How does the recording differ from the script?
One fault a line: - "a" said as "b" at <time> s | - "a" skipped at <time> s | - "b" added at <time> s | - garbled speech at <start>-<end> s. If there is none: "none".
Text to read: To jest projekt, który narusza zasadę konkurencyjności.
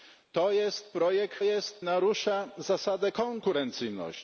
- "który" said as "jest" at 1.4 s